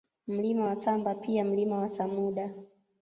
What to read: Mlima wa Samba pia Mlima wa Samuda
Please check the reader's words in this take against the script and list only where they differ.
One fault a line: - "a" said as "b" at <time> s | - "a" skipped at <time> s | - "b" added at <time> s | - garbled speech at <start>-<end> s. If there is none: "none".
none